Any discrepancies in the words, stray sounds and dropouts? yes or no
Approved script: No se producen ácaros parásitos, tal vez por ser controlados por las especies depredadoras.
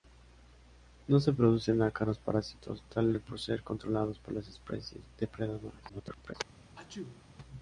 yes